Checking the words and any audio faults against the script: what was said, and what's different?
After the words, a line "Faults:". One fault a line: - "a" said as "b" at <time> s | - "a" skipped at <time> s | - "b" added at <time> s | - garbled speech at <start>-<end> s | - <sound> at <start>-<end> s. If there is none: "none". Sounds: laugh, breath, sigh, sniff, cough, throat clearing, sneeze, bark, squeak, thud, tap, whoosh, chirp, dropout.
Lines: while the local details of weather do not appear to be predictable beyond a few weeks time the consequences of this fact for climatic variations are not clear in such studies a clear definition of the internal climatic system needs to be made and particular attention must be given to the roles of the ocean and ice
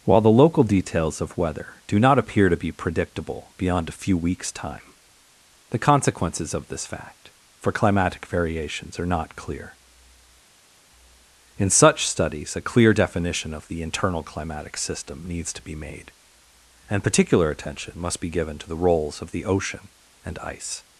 while the local details of weather do not appear to be predictable beyond a few weeks time the consequences of this fact for climatic variations are not clear in such studies a clear definition of the internal climatic system needs to be made and particular attention must be given to the roles of the ocean and ice
Faults:
none